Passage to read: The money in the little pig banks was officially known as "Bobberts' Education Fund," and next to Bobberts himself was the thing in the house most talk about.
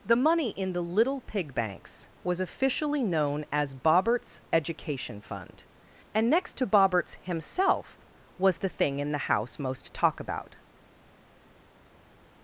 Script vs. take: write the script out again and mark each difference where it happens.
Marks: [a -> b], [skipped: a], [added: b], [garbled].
The money in the little pig banks was officially known as "Bobberts' Education Fund," and next to Bobberts himself was the thing in the house most talk about.